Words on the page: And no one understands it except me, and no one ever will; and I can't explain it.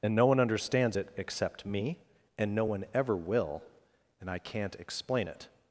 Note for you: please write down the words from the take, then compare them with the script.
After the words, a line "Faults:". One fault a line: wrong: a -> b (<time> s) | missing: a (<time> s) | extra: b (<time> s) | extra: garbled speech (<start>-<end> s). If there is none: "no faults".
And no one understands it except me, and no one ever will; and I can't explain it.
Faults:
no faults